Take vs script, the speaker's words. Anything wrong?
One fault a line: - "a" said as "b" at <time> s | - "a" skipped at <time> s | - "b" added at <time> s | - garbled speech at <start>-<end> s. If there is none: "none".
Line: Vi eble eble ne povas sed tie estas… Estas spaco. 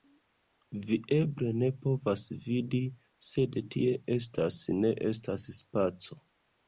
- "eble" skipped at 1.5 s
- "vidi" added at 2.5 s
- "Ne" added at 4.8 s